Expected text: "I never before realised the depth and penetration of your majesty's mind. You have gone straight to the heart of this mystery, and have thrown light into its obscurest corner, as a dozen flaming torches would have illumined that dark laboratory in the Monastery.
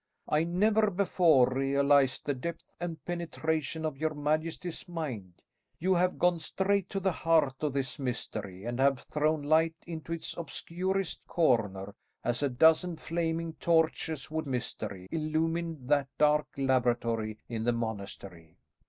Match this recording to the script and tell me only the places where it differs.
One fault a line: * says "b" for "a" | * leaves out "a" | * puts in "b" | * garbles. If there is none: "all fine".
* says "mystery" for "have"